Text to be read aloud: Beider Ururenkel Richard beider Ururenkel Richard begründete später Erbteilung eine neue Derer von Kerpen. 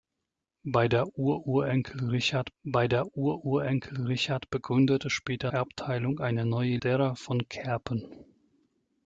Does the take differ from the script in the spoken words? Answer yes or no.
no